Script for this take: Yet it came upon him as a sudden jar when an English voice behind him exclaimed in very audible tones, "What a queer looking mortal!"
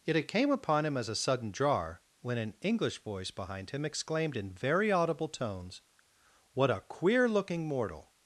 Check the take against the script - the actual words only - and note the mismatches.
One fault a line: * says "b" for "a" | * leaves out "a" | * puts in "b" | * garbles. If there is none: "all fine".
all fine